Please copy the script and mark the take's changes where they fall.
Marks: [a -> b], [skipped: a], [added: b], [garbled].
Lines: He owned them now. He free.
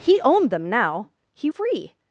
He owned them now. He free.